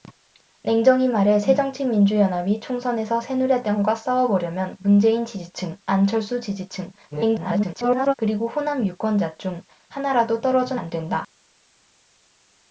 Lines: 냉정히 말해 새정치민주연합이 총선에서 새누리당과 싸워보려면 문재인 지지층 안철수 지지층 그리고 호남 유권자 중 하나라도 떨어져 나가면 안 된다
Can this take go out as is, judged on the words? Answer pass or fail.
fail